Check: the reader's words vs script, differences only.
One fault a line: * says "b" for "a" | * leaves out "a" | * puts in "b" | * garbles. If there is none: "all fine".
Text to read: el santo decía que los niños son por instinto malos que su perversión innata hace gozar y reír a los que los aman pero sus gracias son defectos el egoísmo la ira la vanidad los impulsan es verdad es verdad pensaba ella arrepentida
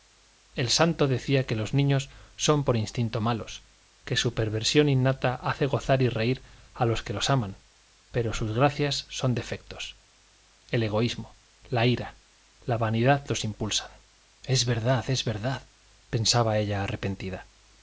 all fine